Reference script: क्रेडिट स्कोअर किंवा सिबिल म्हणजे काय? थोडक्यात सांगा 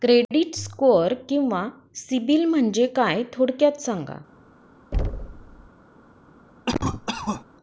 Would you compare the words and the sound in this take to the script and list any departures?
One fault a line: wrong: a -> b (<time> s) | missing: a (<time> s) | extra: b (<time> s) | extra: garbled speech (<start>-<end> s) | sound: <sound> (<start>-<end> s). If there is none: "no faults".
sound: thud (4.9-5.7 s)
sound: cough (6.7-7.4 s)